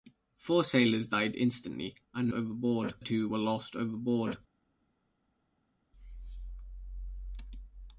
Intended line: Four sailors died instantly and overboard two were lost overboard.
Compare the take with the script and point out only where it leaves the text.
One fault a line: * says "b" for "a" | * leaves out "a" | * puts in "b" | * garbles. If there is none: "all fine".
all fine